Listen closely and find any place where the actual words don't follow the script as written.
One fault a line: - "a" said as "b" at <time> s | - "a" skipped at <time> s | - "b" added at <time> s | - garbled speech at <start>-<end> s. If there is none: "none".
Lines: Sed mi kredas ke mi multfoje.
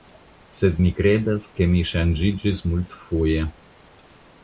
- "ŝanĝiĝis" added at 1.9 s